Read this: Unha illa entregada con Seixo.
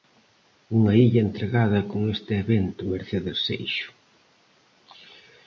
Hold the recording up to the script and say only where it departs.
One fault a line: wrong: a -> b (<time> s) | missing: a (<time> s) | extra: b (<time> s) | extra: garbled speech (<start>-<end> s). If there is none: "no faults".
extra: este evento Mercedes (2.2 s)